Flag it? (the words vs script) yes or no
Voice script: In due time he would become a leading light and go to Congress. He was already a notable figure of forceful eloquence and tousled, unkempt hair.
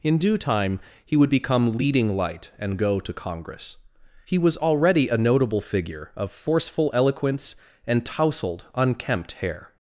yes